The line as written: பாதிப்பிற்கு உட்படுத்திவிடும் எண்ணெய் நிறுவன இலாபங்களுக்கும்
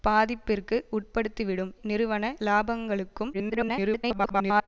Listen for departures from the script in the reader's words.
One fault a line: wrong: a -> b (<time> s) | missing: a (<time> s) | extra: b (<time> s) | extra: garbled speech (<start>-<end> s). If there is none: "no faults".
missing: எண்ணெய் (1.7 s)
extra: garbled speech (3.3-4.7 s)